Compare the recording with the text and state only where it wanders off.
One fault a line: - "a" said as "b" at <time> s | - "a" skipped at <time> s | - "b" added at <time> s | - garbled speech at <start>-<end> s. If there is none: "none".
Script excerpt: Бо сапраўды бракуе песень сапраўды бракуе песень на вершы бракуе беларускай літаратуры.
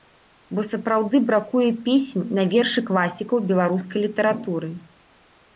- "сапраўды бракуе песень" skipped at 2.2 s
- "бракуе" said as "класікаў" at 2.9 s